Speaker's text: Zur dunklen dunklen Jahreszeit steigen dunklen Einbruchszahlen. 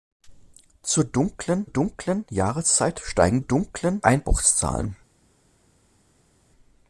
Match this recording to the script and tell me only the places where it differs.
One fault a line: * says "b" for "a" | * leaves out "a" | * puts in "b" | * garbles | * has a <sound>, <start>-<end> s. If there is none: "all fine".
all fine